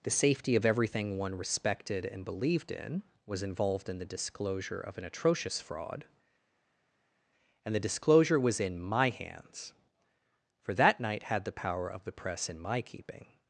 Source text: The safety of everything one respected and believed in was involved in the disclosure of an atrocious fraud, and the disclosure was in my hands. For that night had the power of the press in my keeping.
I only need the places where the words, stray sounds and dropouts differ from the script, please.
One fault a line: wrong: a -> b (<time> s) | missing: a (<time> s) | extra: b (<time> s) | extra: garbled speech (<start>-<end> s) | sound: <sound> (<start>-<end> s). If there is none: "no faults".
no faults